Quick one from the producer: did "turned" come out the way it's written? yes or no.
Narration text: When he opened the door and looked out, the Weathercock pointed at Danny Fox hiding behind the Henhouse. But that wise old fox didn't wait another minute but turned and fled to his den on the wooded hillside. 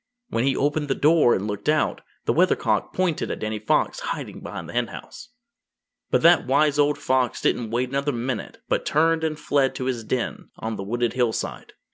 yes